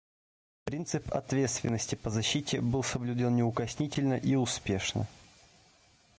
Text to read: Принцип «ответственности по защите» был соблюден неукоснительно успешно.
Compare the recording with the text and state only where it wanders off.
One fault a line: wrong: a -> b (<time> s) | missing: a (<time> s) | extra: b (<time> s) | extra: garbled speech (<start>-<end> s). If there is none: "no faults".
extra: и (4.1 s)